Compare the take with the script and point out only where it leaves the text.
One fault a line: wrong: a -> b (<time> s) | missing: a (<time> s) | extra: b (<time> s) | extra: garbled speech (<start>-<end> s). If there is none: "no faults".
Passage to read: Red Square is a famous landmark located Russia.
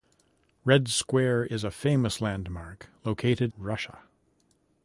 no faults